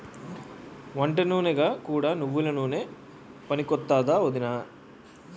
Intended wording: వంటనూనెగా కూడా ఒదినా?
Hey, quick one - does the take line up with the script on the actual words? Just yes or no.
no